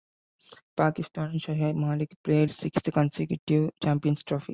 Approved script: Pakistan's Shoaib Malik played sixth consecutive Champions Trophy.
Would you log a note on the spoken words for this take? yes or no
no